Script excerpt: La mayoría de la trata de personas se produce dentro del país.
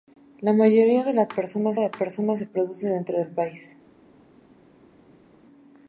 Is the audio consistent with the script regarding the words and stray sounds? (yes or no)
no